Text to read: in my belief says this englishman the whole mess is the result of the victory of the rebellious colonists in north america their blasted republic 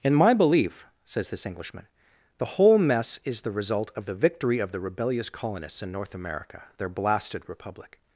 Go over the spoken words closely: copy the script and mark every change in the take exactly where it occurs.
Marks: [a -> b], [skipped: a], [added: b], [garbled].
in my belief says this englishman the whole mess is the result of the victory of the rebellious colonists in north america their blasted republic